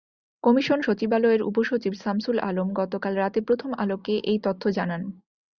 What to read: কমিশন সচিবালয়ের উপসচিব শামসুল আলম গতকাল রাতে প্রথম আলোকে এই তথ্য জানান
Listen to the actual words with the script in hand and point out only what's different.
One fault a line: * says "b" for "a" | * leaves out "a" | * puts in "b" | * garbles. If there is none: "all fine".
all fine